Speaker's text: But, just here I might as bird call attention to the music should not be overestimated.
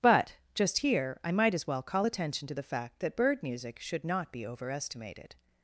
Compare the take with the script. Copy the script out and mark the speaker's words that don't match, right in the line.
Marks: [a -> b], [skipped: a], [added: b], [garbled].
But, just here I might as [bird -> well] call attention to the [added: fact that bird] music should not be overestimated.